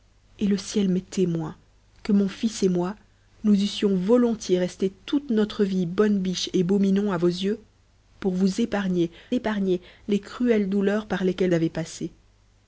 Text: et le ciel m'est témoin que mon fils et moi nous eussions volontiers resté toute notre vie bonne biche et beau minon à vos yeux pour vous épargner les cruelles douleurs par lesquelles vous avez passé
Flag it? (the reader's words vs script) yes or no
yes